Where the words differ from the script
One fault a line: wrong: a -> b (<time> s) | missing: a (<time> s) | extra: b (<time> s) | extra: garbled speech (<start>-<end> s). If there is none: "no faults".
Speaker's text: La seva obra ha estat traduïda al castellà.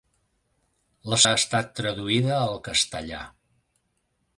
missing: seva obra (1.2 s)